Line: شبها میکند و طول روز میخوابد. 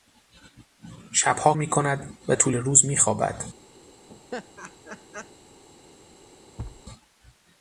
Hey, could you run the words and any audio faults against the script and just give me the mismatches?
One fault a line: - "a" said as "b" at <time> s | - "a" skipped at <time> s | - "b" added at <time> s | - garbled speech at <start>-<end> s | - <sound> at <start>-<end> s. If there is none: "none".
- laugh at 4.1-5.3 s
- thud at 6.6-6.8 s